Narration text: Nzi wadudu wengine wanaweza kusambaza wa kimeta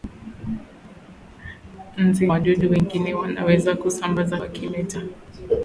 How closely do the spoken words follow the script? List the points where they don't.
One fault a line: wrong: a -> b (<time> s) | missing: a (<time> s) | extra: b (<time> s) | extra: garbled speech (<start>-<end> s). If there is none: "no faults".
no faults